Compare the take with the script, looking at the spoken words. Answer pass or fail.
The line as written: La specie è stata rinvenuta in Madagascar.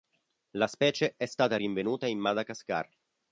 pass